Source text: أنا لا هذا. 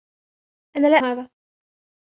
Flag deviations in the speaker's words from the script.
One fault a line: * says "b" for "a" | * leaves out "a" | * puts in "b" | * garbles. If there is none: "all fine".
all fine